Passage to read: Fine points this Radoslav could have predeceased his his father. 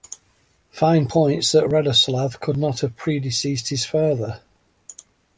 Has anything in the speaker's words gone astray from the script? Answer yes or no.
yes